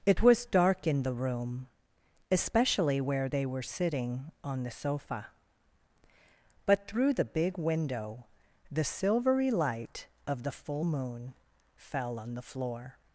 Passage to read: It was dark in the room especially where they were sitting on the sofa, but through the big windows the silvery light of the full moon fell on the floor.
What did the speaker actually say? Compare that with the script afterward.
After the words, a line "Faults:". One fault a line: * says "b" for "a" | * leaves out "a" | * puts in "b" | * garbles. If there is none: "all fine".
It was dark in the room especially where they were sitting on the sofa, but through the big window the silvery light of the full moon fell on the floor.
Faults:
* says "window" for "windows"